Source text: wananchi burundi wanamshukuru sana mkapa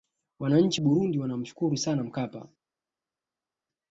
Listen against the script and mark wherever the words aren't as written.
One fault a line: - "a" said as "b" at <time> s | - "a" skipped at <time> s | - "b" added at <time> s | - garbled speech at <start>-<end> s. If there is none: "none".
none